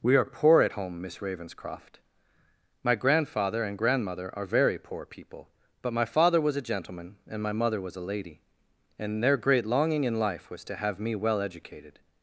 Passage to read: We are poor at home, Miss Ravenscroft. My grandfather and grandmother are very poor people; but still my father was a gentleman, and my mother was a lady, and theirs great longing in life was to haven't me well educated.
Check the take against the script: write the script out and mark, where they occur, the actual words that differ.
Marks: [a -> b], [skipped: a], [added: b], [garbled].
We are poor at home, Miss Ravenscroft. My grandfather and grandmother are very poor people; but [skipped: still] my father was a gentleman, and my mother was a lady, and [theirs -> their] great longing in life was to [haven't -> have] me well educated.